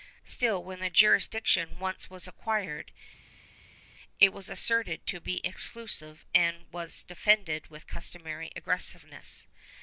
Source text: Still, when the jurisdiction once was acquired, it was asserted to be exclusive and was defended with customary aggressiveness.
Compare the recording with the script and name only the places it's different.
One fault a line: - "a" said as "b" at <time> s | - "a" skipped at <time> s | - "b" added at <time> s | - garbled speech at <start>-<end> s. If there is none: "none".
none